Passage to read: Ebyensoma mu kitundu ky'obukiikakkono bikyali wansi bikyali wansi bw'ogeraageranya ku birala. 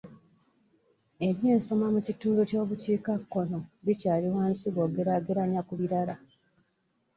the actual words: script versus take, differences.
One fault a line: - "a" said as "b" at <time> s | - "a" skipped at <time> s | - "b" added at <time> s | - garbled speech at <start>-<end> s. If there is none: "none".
- "bikyali wansi" skipped at 4.6 s